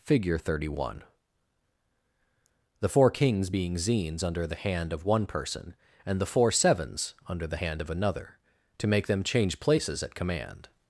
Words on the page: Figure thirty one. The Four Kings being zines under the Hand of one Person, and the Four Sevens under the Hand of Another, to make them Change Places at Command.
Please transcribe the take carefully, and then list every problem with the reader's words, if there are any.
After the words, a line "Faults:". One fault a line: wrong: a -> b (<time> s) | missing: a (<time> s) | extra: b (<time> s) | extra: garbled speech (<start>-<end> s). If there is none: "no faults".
Figure thirty one. The Four Kings being zines under the Hand of one Person, and the Four Sevens under the Hand of Another, to make them Change Places at Command.
Faults:
no faults